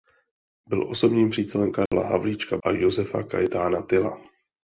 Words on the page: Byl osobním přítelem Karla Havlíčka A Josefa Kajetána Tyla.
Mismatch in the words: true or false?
false